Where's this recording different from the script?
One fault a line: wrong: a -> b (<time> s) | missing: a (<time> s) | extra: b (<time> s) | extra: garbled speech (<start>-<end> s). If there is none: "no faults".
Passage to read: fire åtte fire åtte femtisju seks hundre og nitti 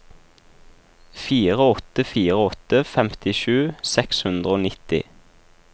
no faults